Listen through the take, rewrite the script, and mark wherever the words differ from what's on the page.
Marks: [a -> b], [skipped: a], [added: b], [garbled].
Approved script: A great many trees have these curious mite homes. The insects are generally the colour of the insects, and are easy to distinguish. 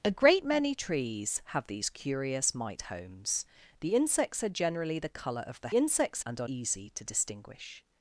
A great many trees have these curious mite homes. The insects are generally the colour of the insects, and are easy to distinguish.